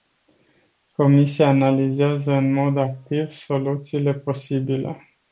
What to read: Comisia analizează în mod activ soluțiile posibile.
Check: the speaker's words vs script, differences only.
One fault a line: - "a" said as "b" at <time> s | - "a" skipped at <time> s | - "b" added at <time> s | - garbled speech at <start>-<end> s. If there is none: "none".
none